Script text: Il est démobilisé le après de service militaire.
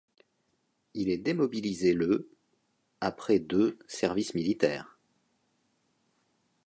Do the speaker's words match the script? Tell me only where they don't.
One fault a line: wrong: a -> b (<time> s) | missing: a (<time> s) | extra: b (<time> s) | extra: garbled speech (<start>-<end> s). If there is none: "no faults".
no faults